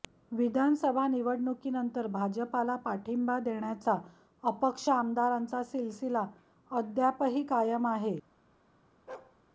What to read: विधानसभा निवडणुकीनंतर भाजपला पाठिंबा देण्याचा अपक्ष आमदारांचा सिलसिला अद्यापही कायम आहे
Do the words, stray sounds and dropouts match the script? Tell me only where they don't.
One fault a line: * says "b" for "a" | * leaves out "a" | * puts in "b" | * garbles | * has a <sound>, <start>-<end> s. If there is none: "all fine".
* has a bark, 9.1-9.4 s